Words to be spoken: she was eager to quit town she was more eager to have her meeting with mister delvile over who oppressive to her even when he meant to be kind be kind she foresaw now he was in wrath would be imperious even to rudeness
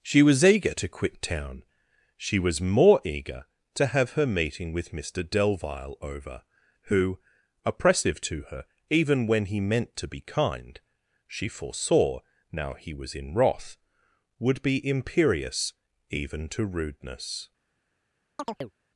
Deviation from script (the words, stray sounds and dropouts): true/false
true